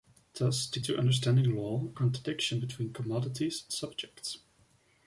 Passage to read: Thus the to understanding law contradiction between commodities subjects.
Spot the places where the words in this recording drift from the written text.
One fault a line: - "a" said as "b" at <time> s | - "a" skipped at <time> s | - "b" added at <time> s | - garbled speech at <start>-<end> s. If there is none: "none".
none